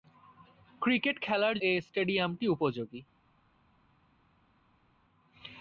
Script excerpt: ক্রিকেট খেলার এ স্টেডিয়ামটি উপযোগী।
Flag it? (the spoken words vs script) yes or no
no